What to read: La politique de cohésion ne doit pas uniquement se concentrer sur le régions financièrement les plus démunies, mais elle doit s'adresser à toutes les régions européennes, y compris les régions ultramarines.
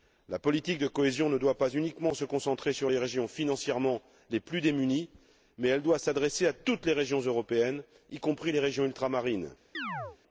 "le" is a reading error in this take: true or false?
true